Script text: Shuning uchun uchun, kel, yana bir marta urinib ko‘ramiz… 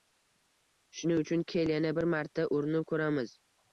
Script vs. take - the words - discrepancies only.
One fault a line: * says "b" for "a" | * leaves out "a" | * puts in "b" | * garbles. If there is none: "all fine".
* leaves out "uchun"